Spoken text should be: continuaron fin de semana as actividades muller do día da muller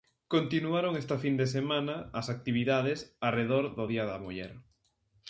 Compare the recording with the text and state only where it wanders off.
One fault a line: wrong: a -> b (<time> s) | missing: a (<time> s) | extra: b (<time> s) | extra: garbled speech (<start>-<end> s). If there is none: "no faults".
extra: esta (1.0 s)
wrong: muller -> arredor (3.3 s)